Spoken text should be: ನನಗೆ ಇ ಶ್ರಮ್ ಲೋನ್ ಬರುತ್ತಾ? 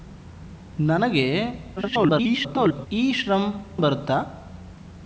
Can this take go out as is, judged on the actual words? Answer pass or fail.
fail